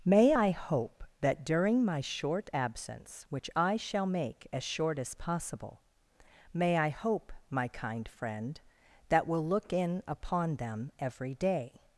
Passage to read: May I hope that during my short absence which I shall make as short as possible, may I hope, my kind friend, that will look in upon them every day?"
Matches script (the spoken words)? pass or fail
pass